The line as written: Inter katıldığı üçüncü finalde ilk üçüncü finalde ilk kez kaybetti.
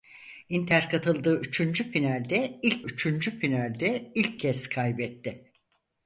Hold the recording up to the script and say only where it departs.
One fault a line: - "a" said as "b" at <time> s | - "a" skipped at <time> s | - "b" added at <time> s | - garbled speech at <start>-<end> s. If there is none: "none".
none